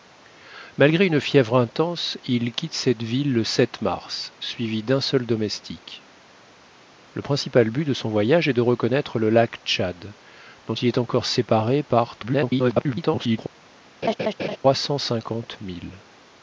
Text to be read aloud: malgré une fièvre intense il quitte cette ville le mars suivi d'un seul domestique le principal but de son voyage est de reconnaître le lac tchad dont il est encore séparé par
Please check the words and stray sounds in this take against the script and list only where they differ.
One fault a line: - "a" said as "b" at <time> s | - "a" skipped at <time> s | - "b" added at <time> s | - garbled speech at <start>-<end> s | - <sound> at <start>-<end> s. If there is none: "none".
- garbled speech at 12.2-13.4 s
- laugh at 14.0-14.6 s